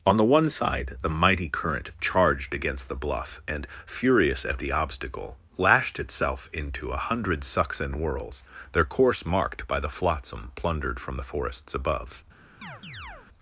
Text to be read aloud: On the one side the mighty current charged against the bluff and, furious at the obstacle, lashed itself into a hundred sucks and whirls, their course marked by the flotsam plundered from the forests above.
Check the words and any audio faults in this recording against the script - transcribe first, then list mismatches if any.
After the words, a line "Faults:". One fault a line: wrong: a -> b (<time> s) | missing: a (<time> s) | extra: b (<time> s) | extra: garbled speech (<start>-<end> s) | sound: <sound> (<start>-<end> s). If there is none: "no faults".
On the one side the mighty current charged against the bluff and, furious at the obstacle, lashed itself into a hundred sucks and whirls, their course marked by the flotsam plundered from the forests above.
Faults:
sound: chirp (12.6-13.3 s)